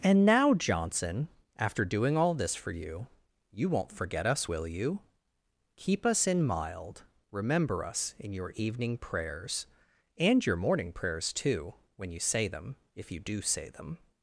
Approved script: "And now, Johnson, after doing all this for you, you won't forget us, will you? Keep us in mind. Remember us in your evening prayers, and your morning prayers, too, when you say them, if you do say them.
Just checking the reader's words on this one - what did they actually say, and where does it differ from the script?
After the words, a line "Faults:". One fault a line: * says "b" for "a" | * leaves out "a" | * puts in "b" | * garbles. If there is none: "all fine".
"And now, Johnson, after doing all this for you, you won't forget us, will you? Keep us in mild. Remember us in your evening prayers, and your morning prayers, too, when you say them, if you do say them.
Faults:
* says "mild" for "mind"